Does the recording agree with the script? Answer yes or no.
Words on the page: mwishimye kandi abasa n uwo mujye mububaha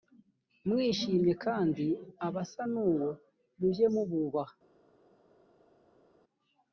yes